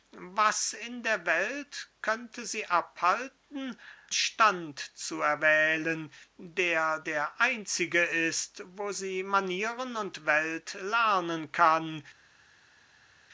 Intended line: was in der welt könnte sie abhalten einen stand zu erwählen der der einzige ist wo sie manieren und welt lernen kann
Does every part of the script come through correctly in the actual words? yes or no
no